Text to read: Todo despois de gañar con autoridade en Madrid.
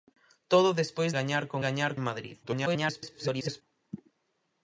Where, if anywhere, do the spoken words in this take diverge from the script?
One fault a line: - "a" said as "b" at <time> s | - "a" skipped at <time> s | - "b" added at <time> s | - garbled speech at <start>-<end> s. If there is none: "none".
- "de" skipped at 1.1 s
- "autoridade" said as "gañar" at 1.7 s
- garbled speech at 2.4-3.6 s